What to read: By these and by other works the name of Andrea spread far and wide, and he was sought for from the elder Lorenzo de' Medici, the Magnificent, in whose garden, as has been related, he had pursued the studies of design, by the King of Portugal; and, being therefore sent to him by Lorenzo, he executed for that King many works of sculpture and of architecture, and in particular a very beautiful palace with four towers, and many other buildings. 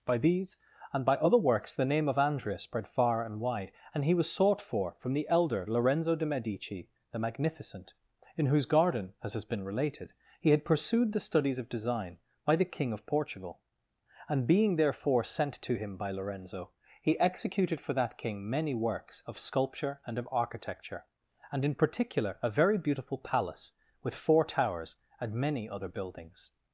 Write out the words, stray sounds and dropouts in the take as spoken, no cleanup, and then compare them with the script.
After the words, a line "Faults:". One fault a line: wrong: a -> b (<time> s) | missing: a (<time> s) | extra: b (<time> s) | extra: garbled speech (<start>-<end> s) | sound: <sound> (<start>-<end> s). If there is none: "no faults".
By these and by other works the name of Andrea spread far and wide, and he was sought for from the elder Lorenzo de' Medici, the Magnificent, in whose garden, as has been related, he had pursued the studies of design, by the King of Portugal; and, being therefore sent to him by Lorenzo, he executed for that King many works of sculpture and of architecture, and in particular a very beautiful palace with four towers, and many other buildings.
Faults:
no faults